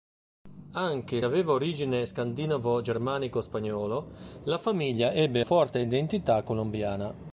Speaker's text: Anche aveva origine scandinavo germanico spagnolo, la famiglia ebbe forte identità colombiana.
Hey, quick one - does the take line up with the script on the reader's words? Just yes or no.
yes